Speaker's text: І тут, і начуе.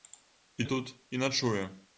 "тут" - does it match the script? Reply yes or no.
yes